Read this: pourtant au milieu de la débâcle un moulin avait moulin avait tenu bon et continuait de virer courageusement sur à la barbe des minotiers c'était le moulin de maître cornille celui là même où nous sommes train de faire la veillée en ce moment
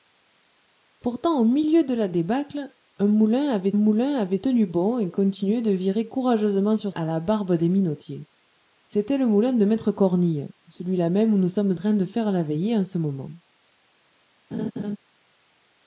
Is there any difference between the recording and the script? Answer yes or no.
no